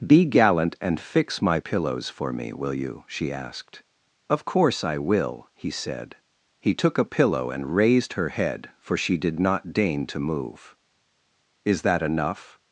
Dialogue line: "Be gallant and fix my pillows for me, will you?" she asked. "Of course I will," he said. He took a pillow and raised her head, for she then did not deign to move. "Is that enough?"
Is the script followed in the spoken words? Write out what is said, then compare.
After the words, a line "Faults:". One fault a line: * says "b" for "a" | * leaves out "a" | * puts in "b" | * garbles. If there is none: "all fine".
"Be gallant and fix my pillows for me, will you?" she asked. "Of course I will," he said. He took a pillow and raised her head, for she did not deign to move. "Is that enough?"
Faults:
* leaves out "then"